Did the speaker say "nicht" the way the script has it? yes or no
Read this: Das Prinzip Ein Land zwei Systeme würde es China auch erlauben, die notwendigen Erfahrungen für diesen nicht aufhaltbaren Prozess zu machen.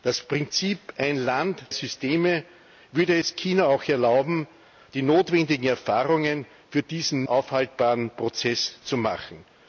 no